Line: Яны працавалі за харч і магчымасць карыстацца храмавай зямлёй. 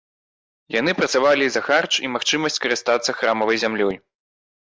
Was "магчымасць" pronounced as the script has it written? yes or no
yes